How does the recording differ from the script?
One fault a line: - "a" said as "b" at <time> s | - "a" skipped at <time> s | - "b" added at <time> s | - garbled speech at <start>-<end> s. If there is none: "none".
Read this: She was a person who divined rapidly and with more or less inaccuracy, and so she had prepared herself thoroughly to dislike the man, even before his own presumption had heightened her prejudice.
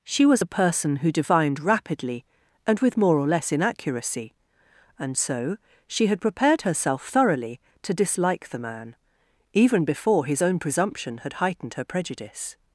none